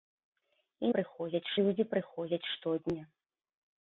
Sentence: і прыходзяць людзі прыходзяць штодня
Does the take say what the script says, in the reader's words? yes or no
yes